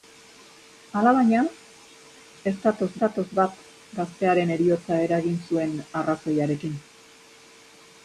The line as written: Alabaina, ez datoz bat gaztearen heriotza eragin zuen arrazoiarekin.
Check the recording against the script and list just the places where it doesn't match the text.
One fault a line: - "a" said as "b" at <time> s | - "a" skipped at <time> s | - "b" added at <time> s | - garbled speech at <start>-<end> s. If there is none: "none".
- "datoz" added at 3.0 s